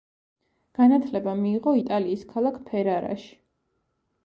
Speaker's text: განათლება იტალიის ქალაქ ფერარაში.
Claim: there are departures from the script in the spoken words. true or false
true